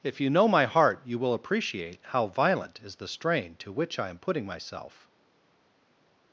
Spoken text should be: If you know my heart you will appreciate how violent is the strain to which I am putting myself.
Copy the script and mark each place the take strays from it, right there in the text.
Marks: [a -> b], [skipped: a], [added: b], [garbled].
If you know my heart you will appreciate how violent is the strain to which I am putting myself.